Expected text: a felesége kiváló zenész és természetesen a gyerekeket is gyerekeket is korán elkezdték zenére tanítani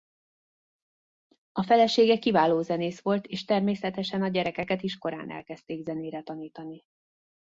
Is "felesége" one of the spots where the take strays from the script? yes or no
no